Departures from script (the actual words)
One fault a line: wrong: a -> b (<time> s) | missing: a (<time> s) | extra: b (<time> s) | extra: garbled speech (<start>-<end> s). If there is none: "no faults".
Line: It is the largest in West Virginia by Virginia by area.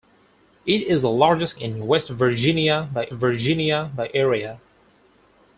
no faults